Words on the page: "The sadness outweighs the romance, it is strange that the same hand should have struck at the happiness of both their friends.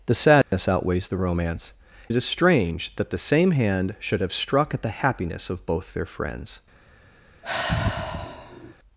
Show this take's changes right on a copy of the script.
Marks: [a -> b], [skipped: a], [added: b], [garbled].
"The sadness outweighs the romance, it is strange that the same hand should have struck at the happiness of both their friends.